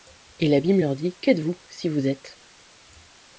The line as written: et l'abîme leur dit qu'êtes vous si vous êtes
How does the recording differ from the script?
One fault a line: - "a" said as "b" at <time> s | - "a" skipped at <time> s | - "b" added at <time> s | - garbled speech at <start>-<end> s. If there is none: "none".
none